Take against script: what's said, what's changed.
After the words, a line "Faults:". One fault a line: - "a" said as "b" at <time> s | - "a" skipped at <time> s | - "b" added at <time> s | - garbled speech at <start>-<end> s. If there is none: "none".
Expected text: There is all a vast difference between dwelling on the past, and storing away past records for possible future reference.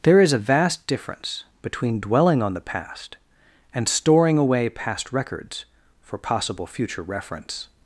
There is a vast difference between dwelling on the past, and storing away past records for possible future reference.
Faults:
- "all" skipped at 0.3 s